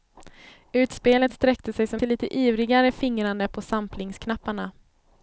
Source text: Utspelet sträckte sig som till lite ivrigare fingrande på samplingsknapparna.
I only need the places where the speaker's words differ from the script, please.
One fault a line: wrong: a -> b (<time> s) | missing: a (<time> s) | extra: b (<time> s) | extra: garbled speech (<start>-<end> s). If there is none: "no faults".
no faults